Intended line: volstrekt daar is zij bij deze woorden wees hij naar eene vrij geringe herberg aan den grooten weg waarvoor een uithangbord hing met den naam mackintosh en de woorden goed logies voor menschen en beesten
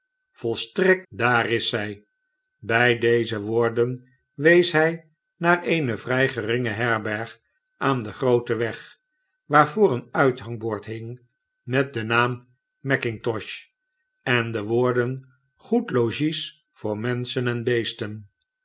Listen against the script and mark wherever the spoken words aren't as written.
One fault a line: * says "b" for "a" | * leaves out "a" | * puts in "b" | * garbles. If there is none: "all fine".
all fine